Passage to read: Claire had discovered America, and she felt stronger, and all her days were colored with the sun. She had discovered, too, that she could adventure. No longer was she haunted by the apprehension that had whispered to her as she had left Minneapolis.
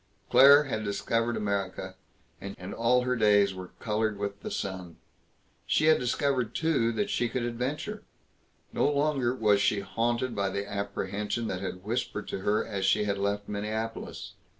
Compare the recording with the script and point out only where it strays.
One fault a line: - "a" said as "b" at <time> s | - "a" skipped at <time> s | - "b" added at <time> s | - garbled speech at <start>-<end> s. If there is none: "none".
- "she felt stronger" skipped at 2.6 s